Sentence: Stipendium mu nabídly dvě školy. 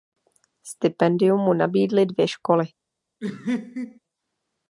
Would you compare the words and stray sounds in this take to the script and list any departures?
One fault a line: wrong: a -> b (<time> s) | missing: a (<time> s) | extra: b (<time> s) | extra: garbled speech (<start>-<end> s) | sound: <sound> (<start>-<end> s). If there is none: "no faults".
sound: laugh (3.2-4.0 s)